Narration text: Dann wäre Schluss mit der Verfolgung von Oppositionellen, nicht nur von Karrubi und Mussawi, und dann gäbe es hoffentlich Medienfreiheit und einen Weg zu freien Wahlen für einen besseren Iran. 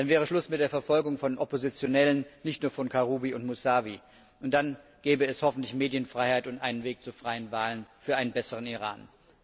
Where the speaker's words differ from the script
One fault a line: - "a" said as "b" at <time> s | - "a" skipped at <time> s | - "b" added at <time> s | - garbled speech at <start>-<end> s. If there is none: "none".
none